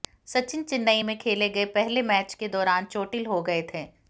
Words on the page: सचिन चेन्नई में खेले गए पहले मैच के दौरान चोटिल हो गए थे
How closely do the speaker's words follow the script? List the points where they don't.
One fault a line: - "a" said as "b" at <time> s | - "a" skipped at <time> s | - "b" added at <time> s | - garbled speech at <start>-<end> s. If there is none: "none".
none